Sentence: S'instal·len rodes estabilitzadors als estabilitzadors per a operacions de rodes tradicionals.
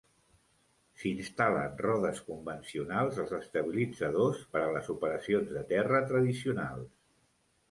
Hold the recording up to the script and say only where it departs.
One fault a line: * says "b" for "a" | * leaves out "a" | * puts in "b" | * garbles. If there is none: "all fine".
* says "convencionals" for "estabilitzadors"
* puts in "les"
* says "terra" for "rodes"